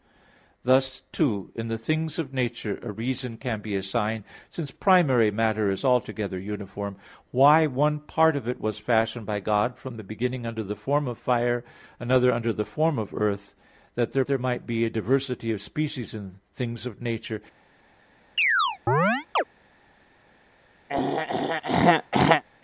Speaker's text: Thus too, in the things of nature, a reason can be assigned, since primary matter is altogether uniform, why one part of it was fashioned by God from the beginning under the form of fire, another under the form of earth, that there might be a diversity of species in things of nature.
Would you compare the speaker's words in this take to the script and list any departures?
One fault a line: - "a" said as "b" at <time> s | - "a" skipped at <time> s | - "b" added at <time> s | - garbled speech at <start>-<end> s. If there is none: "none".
- "there" added at 14.2 s